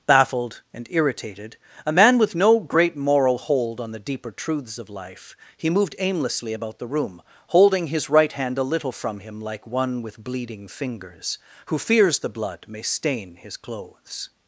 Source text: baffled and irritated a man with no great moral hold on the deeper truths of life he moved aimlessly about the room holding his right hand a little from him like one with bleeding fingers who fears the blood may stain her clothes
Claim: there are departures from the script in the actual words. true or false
true